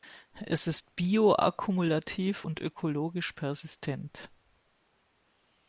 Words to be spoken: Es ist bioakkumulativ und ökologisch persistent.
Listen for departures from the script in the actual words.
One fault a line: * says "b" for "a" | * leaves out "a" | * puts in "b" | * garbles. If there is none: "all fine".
all fine